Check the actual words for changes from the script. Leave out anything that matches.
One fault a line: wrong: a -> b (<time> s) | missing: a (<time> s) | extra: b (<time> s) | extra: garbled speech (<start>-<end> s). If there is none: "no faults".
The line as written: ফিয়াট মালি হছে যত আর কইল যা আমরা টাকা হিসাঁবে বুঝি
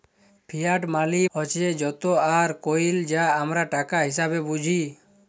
no faults